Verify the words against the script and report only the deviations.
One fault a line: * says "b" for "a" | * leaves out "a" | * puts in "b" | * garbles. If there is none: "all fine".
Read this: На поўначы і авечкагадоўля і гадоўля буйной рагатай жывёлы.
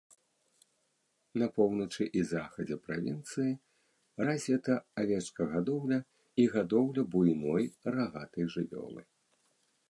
* puts in "захадзе правінцыі развіта"